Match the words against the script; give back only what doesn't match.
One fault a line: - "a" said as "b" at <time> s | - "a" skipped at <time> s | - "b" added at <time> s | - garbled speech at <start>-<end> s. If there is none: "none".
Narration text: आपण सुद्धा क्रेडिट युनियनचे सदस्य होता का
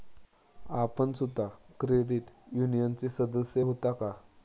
none